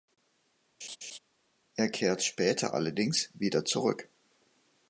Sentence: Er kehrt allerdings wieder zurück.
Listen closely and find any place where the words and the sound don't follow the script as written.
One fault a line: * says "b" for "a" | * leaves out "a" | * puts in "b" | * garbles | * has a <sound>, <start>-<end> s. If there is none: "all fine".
* has a laugh, 0.8-1.2 s
* puts in "später"